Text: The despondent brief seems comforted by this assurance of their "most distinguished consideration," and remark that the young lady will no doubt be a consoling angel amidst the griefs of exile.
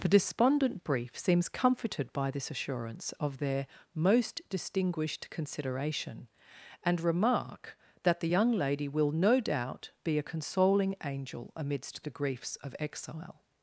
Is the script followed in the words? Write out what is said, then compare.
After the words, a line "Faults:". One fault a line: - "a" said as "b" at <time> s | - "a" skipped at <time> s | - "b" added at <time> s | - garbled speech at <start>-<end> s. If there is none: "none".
The despondent brief seems comforted by this assurance of their "most distinguished consideration," and remark that the young lady will no doubt be a consoling angel amidst the griefs of exile.
Faults:
none